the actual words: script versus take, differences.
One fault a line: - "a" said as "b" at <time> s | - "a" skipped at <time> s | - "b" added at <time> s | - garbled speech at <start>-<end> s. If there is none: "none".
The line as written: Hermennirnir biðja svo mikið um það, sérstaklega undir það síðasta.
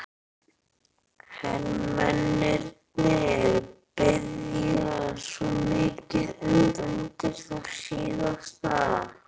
- "það sérstaklega" skipped at 6.7 s